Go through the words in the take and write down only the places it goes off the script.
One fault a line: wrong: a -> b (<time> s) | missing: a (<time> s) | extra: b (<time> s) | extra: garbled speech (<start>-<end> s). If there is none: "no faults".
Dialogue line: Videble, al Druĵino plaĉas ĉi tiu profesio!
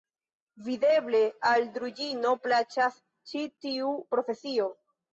no faults